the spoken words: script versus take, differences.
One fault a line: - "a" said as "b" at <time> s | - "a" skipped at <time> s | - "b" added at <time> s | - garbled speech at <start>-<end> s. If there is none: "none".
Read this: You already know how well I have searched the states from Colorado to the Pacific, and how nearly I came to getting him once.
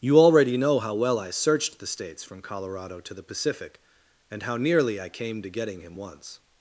- "have" skipped at 1.3 s